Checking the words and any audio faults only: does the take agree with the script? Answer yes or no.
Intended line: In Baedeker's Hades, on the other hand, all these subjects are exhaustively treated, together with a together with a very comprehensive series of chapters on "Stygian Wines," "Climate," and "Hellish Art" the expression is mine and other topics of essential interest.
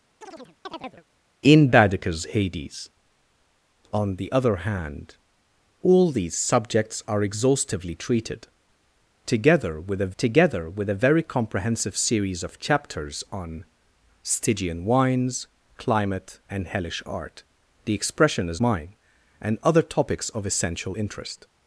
no